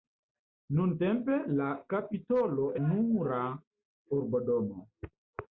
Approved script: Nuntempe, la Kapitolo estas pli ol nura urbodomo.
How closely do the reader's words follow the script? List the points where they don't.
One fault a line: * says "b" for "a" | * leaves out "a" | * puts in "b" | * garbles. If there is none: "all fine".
* leaves out "estas pli ol"